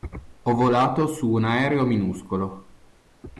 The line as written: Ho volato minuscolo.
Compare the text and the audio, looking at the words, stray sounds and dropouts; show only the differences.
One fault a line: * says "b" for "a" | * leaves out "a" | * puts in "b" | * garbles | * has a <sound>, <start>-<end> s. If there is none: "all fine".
* puts in "su un aereo"